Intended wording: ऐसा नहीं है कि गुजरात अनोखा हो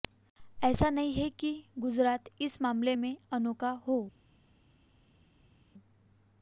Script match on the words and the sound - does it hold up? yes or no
no